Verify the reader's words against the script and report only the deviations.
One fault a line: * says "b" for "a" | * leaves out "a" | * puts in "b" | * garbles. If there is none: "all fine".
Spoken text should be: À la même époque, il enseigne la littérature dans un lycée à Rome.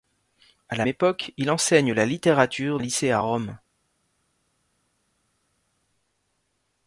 * leaves out "même"
* leaves out "dans"